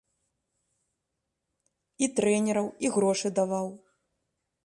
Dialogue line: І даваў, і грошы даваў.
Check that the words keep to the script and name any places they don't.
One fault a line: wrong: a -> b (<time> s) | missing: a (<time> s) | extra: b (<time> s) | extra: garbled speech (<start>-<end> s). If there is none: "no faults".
wrong: даваў -> трэнераў (2.2 s)